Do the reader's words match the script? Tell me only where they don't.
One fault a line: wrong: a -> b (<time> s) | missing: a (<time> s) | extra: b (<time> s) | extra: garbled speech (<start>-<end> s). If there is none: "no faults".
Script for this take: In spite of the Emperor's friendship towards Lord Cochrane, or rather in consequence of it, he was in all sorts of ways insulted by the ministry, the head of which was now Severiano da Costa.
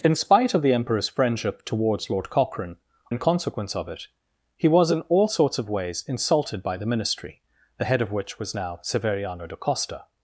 missing: or rather (2.8 s)